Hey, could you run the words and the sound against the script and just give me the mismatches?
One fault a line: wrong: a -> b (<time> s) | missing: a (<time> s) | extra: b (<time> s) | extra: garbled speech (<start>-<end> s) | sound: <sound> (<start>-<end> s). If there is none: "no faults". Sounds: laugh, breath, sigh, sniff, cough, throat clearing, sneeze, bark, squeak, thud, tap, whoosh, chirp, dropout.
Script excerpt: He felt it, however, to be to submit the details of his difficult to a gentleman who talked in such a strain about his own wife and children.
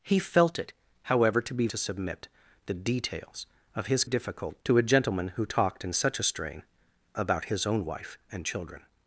no faults